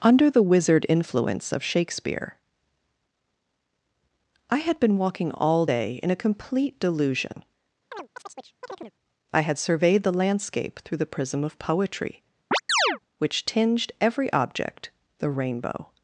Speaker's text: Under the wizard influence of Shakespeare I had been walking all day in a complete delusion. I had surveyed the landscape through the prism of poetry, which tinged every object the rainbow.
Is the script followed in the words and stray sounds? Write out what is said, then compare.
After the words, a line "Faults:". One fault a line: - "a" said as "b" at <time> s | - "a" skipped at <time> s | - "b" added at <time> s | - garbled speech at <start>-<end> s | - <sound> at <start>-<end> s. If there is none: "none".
Under the wizard influence of Shakespeare I had been walking all day in a complete delusion. I had surveyed the landscape through the prism of poetry, which tinged every object the rainbow.
Faults:
- chirp at 7.9-8.9 s
- chirp at 12.5-13.0 s